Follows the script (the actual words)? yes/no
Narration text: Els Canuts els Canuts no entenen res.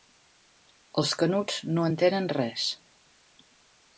no